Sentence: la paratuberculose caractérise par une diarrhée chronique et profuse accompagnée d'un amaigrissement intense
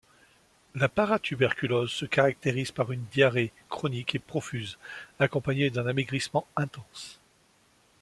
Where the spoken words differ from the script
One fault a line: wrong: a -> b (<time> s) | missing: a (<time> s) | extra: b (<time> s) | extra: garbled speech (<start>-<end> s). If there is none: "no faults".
extra: se (1.9 s)